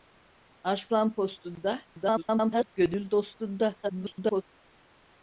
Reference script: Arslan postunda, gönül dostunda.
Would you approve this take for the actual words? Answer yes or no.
no